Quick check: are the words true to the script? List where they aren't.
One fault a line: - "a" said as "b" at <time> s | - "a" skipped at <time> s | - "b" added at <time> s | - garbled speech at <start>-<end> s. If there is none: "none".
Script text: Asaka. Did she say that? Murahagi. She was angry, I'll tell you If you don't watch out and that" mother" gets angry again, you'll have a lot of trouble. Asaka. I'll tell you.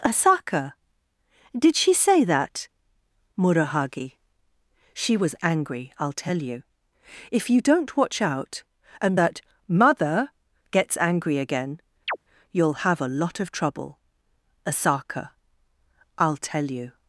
none